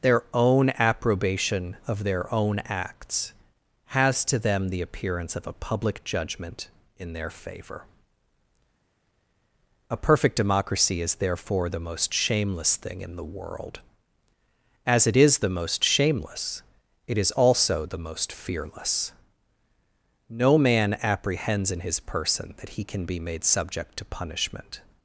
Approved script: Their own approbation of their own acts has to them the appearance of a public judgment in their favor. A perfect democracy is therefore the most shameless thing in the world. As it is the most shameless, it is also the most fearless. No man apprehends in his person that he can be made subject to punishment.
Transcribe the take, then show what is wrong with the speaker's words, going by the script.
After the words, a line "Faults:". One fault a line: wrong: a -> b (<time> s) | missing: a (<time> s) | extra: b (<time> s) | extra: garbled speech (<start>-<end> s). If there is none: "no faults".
Their own approbation of their own acts has to them the appearance of a public judgment in their favor. A perfect democracy is therefore the most shameless thing in the world. As it is the most shameless, it is also the most fearless. No man apprehends in his person that he can be made subject to punishment.
Faults:
no faults